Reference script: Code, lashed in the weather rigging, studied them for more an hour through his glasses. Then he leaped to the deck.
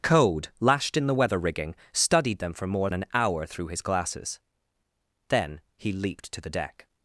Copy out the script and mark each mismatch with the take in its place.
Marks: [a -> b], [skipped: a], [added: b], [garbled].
Code, lashed in the weather rigging, studied them for more an hour through his glasses. Then he leaped to the deck.